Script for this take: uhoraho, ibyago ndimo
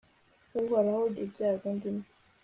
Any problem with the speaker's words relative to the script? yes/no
no